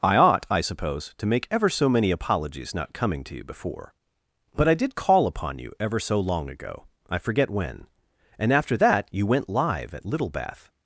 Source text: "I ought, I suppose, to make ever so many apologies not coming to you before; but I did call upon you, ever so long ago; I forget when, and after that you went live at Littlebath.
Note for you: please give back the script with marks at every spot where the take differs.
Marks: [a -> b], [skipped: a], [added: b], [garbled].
"I ought, I suppose, to make ever so many apologies not coming to you before; but I did call upon you, ever so long ago; I forget when, and after that you went live at Littlebath.